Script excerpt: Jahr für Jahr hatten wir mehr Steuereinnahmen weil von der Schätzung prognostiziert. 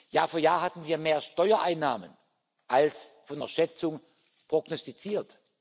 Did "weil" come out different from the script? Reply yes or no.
yes